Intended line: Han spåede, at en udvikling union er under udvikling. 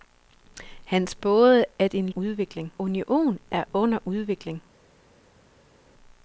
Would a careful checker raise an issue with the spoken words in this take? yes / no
no